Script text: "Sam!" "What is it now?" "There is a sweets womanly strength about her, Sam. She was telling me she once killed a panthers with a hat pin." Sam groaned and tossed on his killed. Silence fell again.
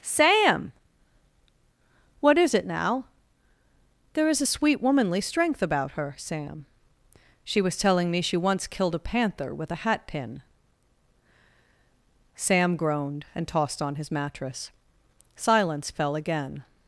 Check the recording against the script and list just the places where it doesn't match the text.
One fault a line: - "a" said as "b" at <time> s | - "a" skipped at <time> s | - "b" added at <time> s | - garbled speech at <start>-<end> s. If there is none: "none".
- "sweets" said as "sweet" at 4.4 s
- "panthers" said as "panther" at 9.0 s
- "killed" said as "mattress" at 14.1 s